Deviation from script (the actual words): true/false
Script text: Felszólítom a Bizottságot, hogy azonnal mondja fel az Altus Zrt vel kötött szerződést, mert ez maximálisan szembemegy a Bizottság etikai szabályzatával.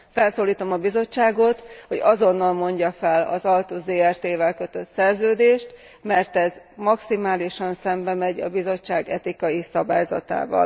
false